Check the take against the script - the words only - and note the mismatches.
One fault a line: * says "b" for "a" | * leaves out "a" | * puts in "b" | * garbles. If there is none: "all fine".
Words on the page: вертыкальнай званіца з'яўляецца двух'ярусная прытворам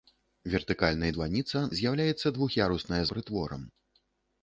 all fine